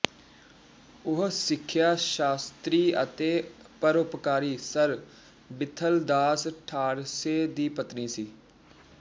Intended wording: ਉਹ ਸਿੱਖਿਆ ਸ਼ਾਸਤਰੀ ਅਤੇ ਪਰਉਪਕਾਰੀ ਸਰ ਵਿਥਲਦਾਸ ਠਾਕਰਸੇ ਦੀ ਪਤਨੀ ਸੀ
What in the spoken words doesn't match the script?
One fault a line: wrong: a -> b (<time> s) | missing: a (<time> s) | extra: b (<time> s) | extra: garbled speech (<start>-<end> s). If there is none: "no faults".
no faults